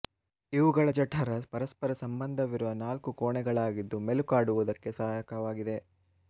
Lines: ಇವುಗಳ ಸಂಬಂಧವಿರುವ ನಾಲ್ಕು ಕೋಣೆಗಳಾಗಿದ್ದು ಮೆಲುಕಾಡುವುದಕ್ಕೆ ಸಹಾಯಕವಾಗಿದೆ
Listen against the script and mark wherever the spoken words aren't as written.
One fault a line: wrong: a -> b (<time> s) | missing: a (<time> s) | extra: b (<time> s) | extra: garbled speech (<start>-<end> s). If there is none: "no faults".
extra: ಜಠರ ಪರಸ್ಪರ (0.9 s)